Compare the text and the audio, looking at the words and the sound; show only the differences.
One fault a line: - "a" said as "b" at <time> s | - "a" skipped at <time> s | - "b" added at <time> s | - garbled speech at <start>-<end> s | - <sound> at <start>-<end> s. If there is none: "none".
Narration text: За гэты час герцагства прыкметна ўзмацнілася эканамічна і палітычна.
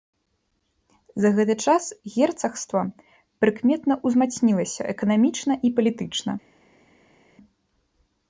none